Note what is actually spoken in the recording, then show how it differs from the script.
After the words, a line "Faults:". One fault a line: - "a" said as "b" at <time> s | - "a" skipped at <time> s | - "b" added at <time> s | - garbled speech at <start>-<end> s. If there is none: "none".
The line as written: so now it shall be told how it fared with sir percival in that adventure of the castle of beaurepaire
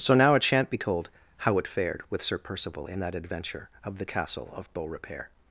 so now it shan't be told how it fared with sir percival in that adventure of the castle of beaurepaire
Faults:
- "shall" said as "shan't" at 0.4 s